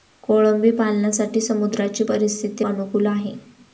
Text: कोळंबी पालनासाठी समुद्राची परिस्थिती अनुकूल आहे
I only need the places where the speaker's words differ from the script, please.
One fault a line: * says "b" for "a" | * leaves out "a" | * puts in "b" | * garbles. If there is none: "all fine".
all fine